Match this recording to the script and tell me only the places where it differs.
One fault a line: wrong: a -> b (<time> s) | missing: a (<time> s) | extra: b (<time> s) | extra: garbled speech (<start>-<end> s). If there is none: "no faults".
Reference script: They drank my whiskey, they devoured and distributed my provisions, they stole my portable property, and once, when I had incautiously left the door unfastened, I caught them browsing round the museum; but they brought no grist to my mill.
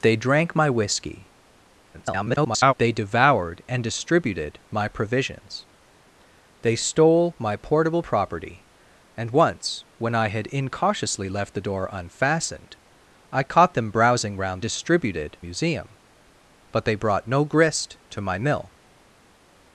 extra: garbled speech (1.9-2.7 s)
wrong: the -> distributed (14.6 s)